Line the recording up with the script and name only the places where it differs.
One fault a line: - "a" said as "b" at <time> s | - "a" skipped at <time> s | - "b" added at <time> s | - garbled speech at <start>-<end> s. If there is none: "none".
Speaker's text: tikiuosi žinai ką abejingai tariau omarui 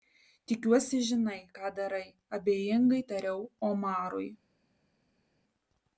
- "darai" added at 1.8 s